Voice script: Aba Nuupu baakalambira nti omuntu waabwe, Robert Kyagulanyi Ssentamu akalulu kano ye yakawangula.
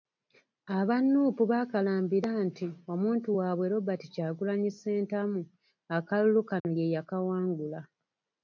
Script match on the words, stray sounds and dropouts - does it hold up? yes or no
no